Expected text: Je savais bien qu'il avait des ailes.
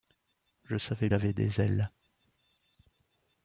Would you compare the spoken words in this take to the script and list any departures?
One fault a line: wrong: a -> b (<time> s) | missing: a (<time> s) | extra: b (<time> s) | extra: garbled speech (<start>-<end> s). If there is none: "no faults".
missing: bien qu'il (1.1 s)